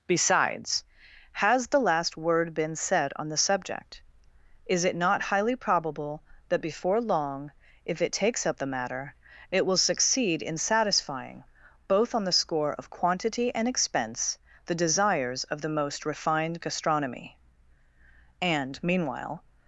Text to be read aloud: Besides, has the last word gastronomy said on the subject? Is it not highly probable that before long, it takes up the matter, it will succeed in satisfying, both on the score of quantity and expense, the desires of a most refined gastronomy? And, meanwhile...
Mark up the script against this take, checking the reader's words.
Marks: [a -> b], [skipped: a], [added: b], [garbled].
Besides, has the last word [gastronomy -> been] said on the subject? Is it not highly probable that before long, [added: if] it takes up the matter, it will succeed in satisfying, both on the score of quantity and expense, the desires of [a -> the] most refined gastronomy? And, meanwhile...